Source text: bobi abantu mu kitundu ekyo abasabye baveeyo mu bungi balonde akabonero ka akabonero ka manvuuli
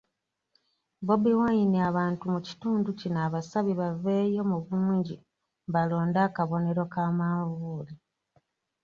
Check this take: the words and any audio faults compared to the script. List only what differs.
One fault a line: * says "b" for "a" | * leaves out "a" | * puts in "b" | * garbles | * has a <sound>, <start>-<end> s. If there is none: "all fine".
* puts in "wine"
* says "kino" for "ekyo"
* leaves out "akabonero ka"